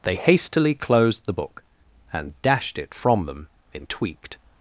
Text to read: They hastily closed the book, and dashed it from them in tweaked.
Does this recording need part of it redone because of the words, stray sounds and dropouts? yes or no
no